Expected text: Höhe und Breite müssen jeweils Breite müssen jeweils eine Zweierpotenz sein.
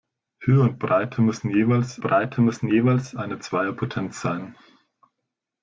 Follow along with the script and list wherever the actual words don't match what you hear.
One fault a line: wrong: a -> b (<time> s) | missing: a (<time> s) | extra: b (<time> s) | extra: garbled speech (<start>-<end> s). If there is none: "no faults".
no faults